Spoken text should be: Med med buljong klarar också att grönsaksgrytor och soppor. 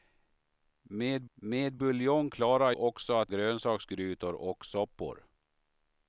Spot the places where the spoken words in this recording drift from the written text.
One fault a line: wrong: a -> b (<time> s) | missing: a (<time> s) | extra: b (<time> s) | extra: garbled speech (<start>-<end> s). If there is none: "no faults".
no faults